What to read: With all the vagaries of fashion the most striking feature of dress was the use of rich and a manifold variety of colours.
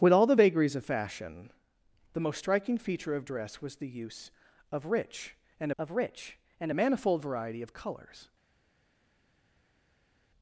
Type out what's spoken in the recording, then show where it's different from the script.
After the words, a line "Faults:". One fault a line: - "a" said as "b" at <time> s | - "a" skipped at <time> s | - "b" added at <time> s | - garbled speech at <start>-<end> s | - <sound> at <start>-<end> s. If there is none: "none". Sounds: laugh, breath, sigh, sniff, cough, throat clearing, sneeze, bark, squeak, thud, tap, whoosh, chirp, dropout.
With all the vagaries of fashion the most striking feature of dress was the use of rich and of rich and a manifold variety of colours.
Faults:
- "of rich and" added at 5.8 s